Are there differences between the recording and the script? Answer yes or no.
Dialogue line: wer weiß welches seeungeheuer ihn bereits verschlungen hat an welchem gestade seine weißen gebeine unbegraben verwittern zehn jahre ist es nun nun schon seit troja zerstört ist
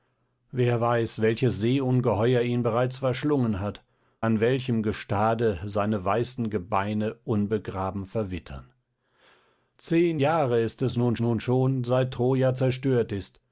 no